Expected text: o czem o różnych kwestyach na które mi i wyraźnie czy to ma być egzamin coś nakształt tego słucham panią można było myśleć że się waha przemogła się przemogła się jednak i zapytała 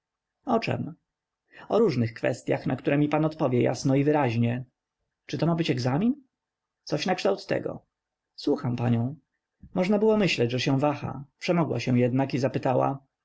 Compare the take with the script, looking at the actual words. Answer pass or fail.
fail